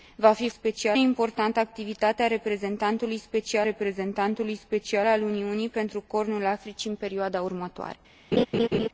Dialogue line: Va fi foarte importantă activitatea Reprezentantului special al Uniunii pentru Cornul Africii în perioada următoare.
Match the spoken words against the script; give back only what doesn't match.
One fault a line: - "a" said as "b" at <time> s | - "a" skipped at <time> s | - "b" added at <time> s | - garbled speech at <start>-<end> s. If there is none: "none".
- "foarte" said as "special" at 0.5 s
- "Reprezentantului special" added at 3.6 s